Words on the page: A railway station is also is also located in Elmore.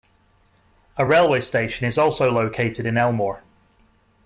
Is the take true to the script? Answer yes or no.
no